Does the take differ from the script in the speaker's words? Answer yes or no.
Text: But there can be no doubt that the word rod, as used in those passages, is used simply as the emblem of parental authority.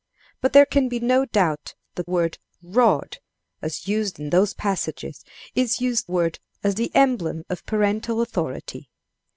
yes